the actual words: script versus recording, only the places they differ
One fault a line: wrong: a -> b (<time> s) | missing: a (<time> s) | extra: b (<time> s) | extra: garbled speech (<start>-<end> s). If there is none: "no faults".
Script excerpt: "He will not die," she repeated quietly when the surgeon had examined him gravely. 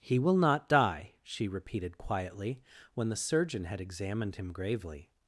no faults